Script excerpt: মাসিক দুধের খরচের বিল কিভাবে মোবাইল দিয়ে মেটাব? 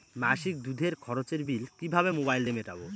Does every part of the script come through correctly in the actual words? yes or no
yes